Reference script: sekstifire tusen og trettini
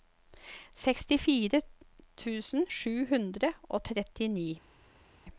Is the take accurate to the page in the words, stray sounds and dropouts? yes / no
no